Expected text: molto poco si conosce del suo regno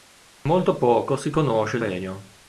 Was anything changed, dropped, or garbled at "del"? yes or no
yes